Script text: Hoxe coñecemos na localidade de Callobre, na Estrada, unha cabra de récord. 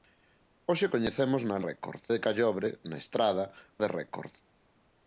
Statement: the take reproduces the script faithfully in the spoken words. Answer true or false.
false